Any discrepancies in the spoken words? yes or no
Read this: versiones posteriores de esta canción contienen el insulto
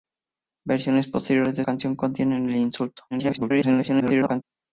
yes